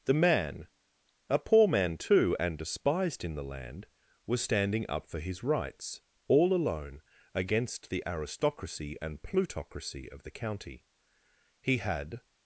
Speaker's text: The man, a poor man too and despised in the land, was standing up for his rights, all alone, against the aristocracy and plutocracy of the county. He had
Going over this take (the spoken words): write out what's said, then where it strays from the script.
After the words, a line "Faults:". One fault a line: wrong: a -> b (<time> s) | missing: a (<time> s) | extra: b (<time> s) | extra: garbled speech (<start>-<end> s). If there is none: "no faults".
The man, a poor man too and despised in the land, was standing up for his rights, all alone, against the aristocracy and plutocracy of the county. He had
Faults:
no faults